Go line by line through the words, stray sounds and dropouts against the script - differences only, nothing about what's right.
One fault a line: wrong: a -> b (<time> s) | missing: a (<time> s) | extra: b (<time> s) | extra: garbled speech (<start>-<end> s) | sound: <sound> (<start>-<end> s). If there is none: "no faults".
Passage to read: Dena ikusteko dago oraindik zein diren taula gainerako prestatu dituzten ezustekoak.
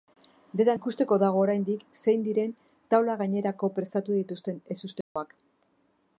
sound: dropout (5.0-5.2 s)